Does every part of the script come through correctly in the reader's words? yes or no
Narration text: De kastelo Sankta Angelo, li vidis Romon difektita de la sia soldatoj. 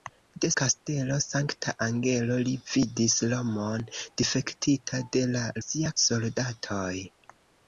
yes